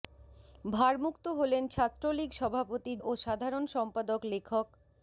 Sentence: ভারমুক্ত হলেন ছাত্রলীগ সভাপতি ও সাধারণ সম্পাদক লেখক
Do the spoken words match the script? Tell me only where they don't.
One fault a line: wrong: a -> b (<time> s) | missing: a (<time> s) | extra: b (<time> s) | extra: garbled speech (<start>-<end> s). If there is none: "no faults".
no faults